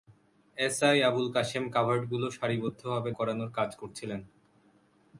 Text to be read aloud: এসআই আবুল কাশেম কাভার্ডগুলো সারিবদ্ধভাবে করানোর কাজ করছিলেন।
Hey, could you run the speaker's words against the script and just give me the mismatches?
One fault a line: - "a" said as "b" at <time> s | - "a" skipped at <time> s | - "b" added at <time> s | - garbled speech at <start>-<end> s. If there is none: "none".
none